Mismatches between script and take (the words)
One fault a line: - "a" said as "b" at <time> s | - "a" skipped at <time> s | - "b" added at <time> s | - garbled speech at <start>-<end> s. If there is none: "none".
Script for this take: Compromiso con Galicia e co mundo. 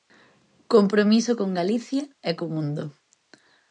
none